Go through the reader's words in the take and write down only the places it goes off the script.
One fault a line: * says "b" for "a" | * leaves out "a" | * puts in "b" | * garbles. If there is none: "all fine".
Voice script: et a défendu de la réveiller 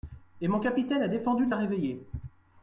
* puts in "mon capitaine"